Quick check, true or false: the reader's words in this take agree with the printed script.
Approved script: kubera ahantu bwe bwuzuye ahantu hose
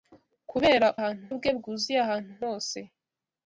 true